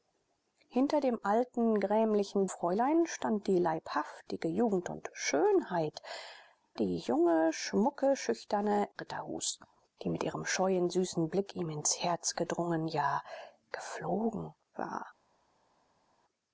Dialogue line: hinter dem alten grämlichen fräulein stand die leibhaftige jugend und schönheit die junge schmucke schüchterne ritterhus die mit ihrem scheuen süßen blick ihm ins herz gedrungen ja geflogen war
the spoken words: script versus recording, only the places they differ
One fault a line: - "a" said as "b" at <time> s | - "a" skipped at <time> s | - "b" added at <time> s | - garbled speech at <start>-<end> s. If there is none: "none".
none